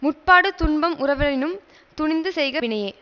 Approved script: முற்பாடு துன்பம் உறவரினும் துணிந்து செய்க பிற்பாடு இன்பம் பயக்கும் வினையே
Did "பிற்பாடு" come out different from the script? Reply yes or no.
yes